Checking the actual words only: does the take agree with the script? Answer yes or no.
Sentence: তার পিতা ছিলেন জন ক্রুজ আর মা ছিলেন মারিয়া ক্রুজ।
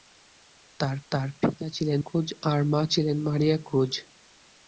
no